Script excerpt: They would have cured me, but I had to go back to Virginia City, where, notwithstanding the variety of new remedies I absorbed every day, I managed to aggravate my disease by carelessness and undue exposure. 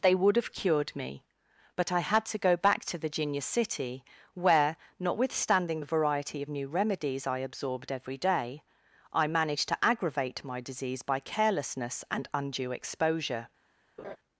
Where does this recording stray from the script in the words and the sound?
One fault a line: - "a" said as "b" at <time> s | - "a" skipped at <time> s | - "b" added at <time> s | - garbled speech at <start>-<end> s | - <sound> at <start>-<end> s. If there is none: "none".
- laugh at 14.0-14.2 s